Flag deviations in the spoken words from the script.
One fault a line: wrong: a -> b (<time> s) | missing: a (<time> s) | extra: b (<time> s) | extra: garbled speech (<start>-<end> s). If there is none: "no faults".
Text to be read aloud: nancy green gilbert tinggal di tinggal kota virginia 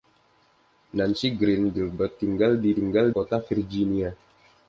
no faults